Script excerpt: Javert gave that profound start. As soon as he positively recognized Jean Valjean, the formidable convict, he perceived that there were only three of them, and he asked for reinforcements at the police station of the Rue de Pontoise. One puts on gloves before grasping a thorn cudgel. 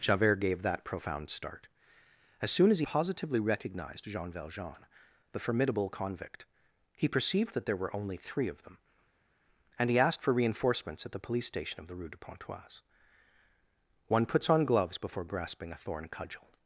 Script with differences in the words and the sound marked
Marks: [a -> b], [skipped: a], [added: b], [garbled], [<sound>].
Javert gave that profound start. As soon as he positively recognized Jean Valjean, the formidable convict, he perceived that there were only three of them, and he asked for reinforcements at the police station of the Rue de Pontoise. One puts on gloves before grasping a thorn cudgel.